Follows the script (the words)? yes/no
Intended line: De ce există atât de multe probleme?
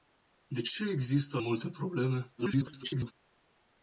no